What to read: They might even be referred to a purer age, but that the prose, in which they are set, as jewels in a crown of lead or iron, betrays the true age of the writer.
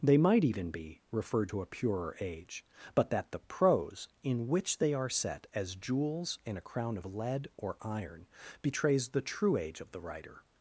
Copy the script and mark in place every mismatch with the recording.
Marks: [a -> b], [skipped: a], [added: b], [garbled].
They might even be referred to a purer age, but that the prose, in which they are set, as jewels in a crown of lead or iron, betrays the true age of the writer.